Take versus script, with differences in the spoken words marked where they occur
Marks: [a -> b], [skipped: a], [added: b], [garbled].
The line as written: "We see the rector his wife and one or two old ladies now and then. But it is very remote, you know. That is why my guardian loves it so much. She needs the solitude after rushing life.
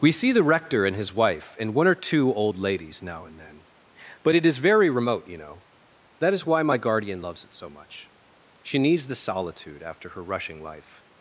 "We see the rector [added: and] his wife and one or two old ladies now and then. But it is very remote, you know. That is why my guardian loves it so much. She needs the solitude after [added: her] rushing life.